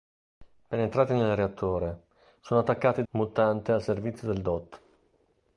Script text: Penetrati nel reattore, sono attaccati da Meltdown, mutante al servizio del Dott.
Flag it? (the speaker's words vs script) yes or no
yes